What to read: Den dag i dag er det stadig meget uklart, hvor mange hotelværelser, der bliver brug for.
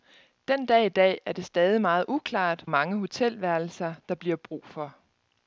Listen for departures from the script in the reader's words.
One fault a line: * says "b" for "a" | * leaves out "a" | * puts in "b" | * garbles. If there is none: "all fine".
* leaves out "hvor"